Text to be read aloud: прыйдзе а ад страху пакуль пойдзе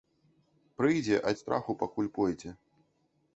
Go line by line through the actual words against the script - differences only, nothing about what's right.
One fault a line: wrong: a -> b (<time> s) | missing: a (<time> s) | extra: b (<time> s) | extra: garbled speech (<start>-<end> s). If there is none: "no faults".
no faults